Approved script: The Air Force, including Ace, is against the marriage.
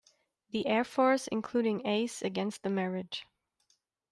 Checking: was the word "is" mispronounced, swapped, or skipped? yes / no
yes